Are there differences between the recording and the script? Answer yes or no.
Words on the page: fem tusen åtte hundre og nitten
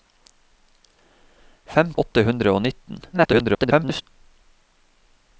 yes